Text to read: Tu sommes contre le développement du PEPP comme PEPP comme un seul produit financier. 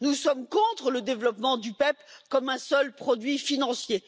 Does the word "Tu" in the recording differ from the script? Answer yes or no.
yes